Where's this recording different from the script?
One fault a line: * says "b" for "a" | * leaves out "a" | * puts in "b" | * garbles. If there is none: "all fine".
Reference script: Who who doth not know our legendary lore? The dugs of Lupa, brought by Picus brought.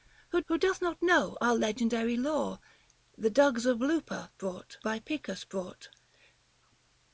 all fine